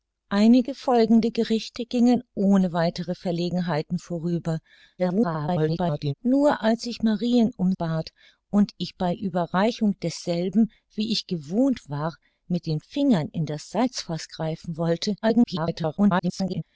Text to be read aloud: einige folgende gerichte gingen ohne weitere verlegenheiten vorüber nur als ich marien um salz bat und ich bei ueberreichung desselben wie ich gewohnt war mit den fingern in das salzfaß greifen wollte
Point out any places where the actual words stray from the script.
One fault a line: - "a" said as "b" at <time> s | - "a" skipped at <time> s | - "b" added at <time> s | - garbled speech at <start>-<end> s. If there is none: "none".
- garbled speech at 5.0-6.1 s
- "salz" skipped at 7.7 s
- garbled speech at 15.2-16.6 s